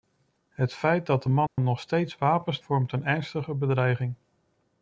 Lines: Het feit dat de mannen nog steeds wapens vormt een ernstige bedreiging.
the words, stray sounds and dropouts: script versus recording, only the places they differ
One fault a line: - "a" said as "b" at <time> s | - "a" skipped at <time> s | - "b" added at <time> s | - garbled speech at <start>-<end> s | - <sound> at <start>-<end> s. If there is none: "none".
- dropout at 1.5-1.6 s